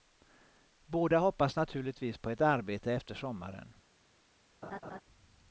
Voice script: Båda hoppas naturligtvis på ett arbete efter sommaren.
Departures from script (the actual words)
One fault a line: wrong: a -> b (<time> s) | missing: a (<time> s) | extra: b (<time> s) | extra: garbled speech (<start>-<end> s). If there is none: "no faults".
no faults